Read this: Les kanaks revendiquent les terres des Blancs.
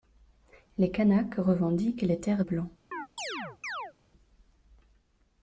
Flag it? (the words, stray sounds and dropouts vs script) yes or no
yes